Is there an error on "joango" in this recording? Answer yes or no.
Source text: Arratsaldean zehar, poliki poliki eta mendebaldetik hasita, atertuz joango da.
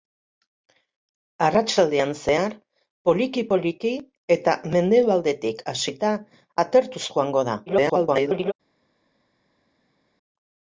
no